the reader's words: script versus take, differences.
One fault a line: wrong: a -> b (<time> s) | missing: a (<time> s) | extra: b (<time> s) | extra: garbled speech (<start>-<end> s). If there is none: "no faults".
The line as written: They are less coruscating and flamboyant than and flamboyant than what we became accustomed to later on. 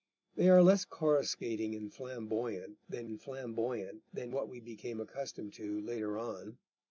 no faults